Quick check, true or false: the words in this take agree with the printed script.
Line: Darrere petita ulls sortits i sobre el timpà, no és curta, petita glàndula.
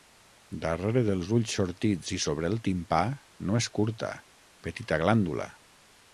false